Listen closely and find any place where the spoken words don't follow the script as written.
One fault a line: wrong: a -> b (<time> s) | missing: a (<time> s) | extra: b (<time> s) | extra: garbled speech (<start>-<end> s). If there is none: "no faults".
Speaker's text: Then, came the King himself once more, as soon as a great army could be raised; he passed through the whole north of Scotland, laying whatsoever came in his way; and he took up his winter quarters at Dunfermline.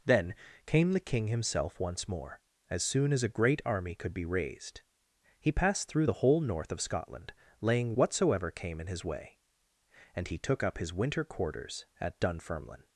no faults